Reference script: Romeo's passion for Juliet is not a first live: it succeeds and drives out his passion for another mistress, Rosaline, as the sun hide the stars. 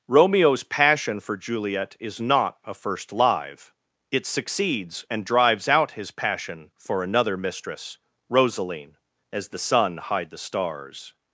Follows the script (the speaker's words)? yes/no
yes